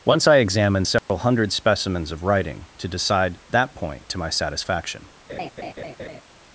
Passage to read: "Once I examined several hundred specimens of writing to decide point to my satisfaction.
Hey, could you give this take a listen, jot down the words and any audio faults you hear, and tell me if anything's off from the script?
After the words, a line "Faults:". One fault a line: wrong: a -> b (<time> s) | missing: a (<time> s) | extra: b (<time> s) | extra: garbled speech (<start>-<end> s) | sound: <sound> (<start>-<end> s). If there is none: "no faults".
"Once I examined several hundred specimens of writing to decide that point to my satisfaction.
Faults:
sound: dropout (1.0-1.1 s)
extra: that (3.5 s)
sound: laugh (5.3-6.2 s)